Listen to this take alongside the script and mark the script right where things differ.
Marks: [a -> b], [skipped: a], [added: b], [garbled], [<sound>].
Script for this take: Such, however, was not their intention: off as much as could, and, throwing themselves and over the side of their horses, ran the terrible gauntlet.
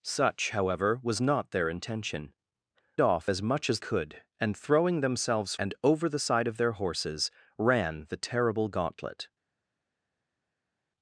Such, however, was not their intention: off as much as could, and, throwing themselves and over the side of their horses, ran the terrible gauntlet.